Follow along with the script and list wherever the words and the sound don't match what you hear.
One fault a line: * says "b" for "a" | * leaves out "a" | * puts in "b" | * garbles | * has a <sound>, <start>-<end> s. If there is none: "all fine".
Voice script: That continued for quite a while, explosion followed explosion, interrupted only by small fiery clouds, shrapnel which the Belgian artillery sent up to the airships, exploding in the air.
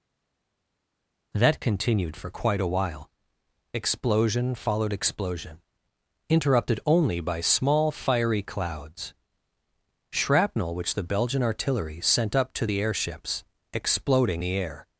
* leaves out "in"